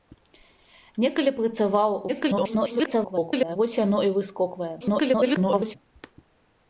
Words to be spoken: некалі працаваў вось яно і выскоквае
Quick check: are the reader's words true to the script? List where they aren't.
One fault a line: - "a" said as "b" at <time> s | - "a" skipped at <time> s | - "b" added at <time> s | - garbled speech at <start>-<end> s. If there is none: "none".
- garbled speech at 2.1-3.6 s
- garbled speech at 4.8-5.8 s